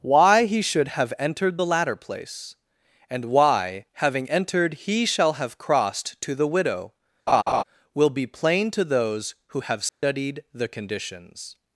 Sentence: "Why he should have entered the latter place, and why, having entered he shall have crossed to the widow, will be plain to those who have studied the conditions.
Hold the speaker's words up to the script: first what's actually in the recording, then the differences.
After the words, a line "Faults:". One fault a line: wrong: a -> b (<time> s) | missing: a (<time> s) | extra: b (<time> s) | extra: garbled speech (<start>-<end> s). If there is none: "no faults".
"Why he should have entered the latter place, and why, having entered he shall have crossed to the widow, will be plain to those who have studied the conditions.
Faults:
no faults